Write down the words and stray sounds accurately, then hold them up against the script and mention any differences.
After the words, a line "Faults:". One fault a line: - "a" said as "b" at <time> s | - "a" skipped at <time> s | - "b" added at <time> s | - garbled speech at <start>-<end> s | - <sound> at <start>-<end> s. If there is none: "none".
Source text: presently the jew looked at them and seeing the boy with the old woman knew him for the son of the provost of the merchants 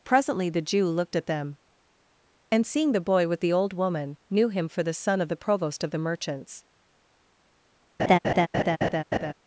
presently the jew looked at them and seeing the boy with the old woman knew him for the son of the provost of the merchants
Faults:
- laugh at 8.0-9.3 s